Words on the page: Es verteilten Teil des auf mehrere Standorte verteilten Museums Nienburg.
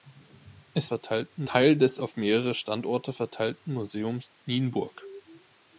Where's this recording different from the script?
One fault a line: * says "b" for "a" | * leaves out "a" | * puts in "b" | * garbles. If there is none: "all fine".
all fine